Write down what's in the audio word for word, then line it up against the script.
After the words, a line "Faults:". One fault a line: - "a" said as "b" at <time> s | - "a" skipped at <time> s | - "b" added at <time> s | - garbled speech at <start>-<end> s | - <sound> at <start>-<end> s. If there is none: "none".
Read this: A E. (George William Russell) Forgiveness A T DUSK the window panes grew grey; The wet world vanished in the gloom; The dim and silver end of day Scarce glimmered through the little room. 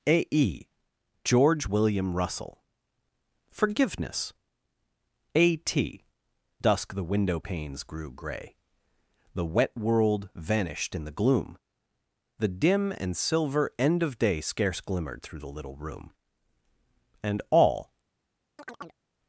A E. (George William Russell) Forgiveness A T DUSK the window panes grew grey; The wet world vanished in the gloom; The dim and silver end of day Scarce glimmered through the little room. And all
Faults:
- "And all" added at 17.2 s
- chirp at 18.6-19.0 s